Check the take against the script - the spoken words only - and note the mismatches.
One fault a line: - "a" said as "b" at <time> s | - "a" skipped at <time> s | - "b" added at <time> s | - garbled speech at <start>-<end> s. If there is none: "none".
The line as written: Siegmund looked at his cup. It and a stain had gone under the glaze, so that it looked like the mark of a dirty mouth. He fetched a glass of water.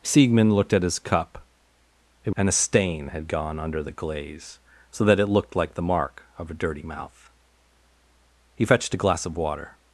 none